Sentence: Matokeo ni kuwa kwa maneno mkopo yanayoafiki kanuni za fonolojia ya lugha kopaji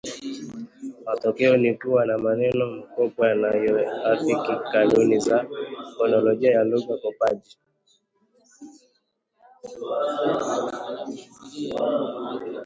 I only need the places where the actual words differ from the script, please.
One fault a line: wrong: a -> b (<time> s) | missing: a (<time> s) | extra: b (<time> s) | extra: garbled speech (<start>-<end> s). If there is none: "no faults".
wrong: kwa -> na (2.0 s)